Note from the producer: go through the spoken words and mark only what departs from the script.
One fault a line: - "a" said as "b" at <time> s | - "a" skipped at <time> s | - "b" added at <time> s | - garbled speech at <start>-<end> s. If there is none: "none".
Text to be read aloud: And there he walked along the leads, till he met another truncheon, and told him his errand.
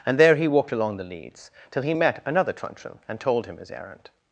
none